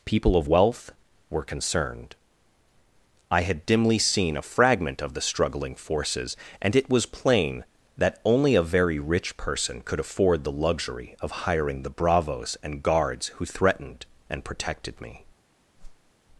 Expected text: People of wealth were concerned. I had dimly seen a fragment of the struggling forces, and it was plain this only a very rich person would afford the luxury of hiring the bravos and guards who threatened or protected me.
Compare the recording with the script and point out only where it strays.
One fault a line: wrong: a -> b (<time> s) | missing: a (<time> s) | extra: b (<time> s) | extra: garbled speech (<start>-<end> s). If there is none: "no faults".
wrong: this -> that (8.0 s)
wrong: would -> could (9.8 s)
wrong: or -> and (14.3 s)